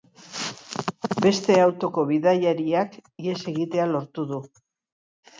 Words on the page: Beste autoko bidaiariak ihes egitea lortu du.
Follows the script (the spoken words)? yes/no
yes